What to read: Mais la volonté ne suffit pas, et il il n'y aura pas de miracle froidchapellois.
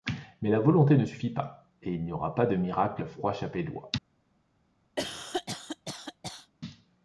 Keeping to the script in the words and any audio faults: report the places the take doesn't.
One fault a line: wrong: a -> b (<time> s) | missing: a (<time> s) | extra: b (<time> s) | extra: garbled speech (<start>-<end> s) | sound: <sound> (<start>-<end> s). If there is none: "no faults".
missing: il (2.0 s)
sound: cough (5.0-6.5 s)